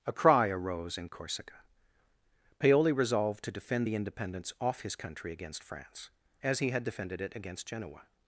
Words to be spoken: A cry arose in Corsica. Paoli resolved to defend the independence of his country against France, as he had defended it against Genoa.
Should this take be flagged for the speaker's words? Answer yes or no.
yes